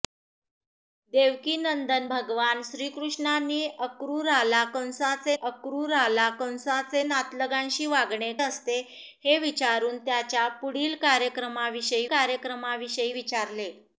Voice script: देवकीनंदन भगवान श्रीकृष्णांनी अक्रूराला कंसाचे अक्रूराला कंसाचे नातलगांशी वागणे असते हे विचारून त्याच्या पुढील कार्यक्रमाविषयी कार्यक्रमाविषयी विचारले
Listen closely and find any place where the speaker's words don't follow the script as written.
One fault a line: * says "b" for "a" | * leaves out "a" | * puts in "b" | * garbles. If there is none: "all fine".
all fine